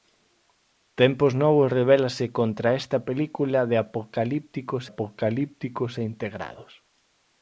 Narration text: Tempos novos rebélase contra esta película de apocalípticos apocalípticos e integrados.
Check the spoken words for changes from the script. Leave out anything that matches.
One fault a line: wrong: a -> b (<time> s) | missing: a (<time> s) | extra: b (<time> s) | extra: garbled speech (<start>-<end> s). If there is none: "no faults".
no faults